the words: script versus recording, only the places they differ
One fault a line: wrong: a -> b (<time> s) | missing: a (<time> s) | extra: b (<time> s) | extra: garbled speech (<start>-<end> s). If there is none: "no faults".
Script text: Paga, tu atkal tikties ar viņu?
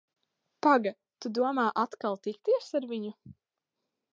extra: domā (1.4 s)